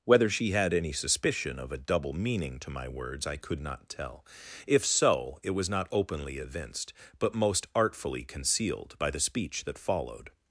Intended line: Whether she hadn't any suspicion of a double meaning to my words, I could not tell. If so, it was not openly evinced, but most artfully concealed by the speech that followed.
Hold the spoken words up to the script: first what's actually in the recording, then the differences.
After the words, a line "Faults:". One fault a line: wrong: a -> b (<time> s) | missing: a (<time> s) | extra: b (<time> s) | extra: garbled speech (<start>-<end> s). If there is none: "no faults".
Whether she had any suspicion of a double meaning to my words, I could not tell. If so, it was not openly evinced, but most artfully concealed by the speech that followed.
Faults:
wrong: hadn't -> had (0.5 s)